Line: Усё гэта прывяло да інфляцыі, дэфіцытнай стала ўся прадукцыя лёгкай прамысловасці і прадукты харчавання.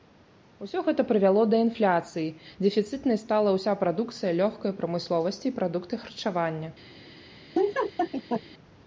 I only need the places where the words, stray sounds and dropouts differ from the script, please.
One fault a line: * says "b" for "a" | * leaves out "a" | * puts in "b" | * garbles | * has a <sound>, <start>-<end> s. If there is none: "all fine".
* has a laugh, 7.5-8.4 s